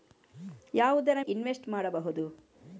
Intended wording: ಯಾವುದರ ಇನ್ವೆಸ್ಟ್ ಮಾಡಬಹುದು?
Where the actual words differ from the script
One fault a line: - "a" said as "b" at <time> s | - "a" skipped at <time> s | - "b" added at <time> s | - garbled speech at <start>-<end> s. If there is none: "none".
none